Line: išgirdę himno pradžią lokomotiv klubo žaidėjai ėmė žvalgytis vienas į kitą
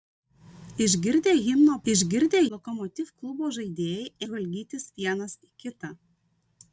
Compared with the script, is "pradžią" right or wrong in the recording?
wrong